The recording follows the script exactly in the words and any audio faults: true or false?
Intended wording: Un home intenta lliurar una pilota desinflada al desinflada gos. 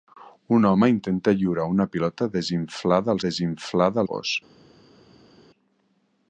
true